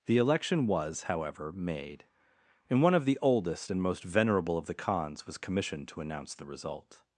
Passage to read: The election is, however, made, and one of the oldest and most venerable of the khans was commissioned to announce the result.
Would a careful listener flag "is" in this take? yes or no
yes